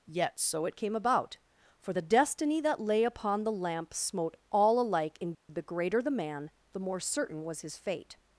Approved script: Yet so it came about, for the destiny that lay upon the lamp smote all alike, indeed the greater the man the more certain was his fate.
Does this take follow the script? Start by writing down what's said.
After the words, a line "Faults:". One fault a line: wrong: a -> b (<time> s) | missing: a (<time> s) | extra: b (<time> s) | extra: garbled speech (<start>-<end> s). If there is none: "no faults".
Yet so it came about, for the destiny that lay upon the lamp smote all alike, indeed the greater the man the more certain was his fate.
Faults:
no faults